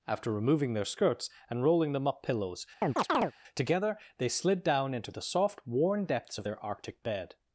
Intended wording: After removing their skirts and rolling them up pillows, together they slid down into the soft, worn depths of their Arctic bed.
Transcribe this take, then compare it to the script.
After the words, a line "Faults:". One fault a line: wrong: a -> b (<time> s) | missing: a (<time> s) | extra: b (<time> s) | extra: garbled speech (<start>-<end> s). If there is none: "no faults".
After removing their skirts and rolling them up pillows, together they slid down into the soft, worn depths of their Arctic bed.
Faults:
no faults